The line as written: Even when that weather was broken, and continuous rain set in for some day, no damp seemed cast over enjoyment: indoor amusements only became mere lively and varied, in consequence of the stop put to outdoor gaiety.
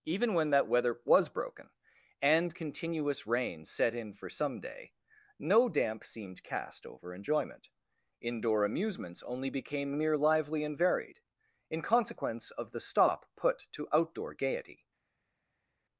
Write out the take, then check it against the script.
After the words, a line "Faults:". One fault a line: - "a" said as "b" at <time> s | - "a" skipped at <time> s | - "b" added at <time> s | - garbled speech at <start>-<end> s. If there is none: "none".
Even when that weather was broken, and continuous rain set in for some day, no damp seemed cast over enjoyment: indoor amusements only became mere lively and varied, in consequence of the stop put to outdoor gaiety.
Faults:
none